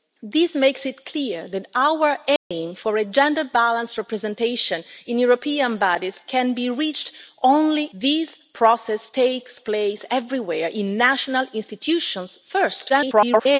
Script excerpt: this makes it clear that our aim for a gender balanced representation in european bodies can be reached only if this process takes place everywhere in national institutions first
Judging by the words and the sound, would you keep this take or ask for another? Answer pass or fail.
fail